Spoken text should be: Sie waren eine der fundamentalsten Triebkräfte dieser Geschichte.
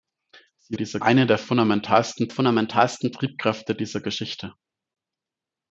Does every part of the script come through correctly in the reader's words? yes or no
no